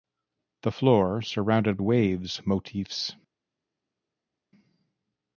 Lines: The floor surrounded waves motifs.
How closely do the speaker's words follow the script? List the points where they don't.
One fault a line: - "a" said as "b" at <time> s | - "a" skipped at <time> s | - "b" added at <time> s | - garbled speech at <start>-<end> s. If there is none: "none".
none